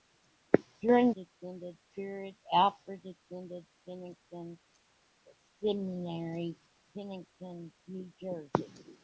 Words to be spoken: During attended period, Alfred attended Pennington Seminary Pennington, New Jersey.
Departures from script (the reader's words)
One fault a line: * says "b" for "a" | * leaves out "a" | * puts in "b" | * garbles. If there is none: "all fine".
all fine